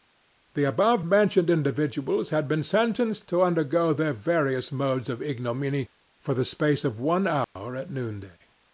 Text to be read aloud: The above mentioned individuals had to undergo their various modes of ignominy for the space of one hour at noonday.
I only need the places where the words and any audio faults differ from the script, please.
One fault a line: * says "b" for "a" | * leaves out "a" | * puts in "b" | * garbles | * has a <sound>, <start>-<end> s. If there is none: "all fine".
* puts in "been sentenced"
* has a dropout, 7.4-7.6 s